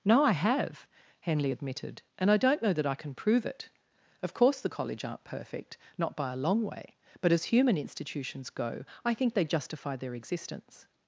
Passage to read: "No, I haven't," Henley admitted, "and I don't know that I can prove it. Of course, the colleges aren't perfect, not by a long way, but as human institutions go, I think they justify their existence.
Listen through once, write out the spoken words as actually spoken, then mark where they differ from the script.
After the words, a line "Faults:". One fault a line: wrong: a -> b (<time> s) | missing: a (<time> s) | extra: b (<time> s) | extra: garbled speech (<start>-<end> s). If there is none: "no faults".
"No, I have," Henley admitted, "and I don't know that I can prove it. Of course, the college aren't perfect, not by a long way, but as human institutions go, I think they justify their existence.
Faults:
wrong: haven't -> have (0.3 s)
wrong: colleges -> college (4.7 s)